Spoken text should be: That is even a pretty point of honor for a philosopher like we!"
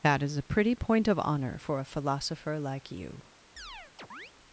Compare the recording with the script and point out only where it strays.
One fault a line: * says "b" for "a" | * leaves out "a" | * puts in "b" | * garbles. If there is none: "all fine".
* leaves out "even"
* says "you" for "we"